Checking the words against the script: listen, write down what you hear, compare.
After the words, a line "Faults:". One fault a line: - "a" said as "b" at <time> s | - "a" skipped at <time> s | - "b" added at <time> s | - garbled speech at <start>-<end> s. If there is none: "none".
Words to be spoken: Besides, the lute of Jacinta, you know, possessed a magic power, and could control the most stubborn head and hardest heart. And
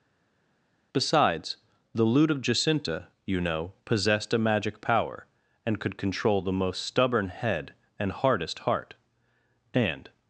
Besides, the lute of Jacinta, you know, possessed a magic power, and could control the most stubborn head and hardest heart. And
Faults:
none